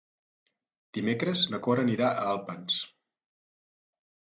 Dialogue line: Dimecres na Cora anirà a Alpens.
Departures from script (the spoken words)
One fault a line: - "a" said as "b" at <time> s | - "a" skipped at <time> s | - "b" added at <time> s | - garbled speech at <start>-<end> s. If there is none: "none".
none